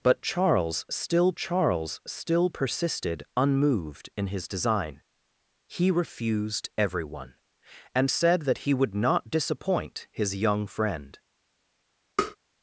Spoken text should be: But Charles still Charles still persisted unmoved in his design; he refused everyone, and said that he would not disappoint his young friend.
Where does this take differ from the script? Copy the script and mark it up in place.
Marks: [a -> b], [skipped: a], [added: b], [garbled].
But Charles still Charles still persisted unmoved in his design; he refused everyone, and said that he would not disappoint his young friend.